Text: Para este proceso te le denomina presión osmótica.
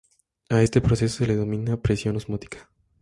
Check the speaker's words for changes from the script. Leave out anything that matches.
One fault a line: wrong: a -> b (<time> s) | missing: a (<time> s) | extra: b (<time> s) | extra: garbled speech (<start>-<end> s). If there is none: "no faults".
wrong: Para -> A (0.5 s)
wrong: te -> se (1.2 s)